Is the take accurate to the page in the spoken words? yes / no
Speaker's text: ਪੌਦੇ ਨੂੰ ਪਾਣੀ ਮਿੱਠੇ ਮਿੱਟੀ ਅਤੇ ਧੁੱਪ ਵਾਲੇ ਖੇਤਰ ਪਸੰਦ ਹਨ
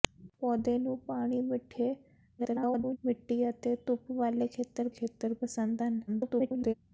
no